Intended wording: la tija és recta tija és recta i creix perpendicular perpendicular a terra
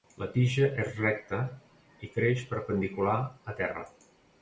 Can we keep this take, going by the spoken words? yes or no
no